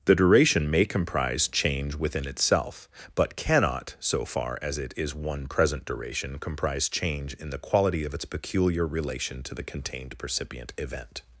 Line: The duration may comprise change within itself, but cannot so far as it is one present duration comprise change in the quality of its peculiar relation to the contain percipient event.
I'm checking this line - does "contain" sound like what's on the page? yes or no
no